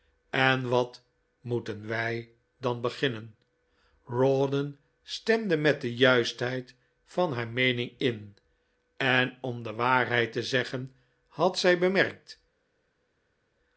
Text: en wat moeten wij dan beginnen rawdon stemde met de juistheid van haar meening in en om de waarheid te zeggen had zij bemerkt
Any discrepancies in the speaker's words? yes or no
no